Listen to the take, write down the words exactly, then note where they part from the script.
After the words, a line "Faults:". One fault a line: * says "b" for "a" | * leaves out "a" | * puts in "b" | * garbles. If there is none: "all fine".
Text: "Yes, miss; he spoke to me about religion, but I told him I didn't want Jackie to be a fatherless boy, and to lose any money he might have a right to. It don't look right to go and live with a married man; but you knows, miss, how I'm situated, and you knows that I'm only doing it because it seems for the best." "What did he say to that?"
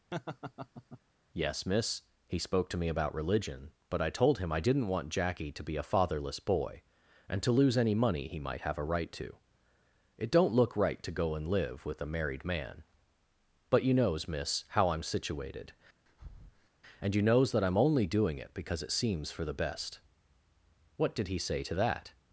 "Yes, miss; he spoke to me about religion, but I told him I didn't want Jackie to be a fatherless boy, and to lose any money he might have a right to. It don't look right to go and live with a married man; but you knows, miss, how I'm situated, and you knows that I'm only doing it because it seems for the best." "What did he say to that?"
Faults:
all fine